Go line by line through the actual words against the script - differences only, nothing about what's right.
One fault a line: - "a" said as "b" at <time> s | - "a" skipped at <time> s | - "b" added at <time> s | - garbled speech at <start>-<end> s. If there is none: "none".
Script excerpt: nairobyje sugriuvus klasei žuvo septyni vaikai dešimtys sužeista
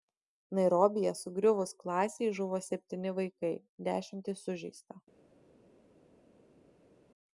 none